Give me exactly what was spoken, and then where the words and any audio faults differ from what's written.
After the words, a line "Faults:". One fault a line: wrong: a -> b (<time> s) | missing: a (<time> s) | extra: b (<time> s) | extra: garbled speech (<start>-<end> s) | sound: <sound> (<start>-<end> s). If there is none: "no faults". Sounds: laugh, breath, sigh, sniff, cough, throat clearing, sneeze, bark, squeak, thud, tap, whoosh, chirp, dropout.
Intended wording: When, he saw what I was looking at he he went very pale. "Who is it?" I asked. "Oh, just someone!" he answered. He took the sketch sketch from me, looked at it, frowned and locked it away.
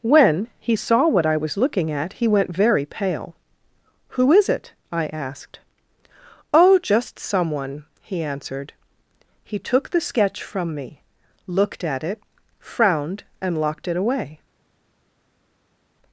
When, he saw what I was looking at he went very pale. "Who is it?" I asked. "Oh, just someone!" he answered. He took the sketch from me, looked at it, frowned and locked it away.
Faults:
missing: he (2.3 s)
missing: sketch (10.4 s)